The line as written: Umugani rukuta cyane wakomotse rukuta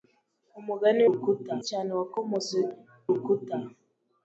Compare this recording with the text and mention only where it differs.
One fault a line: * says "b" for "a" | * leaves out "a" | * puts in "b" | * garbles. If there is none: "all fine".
all fine